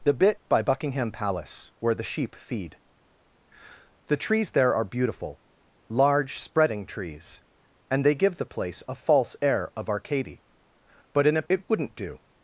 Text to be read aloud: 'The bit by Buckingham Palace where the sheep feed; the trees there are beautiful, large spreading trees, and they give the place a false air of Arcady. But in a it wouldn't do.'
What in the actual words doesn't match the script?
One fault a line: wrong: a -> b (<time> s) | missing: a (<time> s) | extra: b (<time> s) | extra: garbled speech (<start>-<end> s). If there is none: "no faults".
no faults